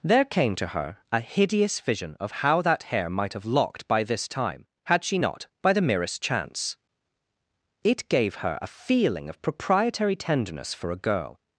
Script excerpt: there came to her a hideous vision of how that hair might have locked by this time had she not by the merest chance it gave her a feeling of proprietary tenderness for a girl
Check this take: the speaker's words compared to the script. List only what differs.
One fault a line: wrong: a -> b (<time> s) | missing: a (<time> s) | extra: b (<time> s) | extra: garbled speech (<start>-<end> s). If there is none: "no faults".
no faults